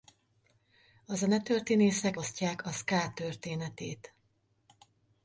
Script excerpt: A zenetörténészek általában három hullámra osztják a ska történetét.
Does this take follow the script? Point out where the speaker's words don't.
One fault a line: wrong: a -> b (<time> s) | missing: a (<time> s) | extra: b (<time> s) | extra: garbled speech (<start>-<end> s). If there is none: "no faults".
missing: általában három hullámra (2.2 s)